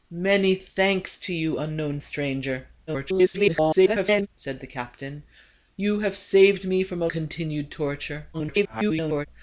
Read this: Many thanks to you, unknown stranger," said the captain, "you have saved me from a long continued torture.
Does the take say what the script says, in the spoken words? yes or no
no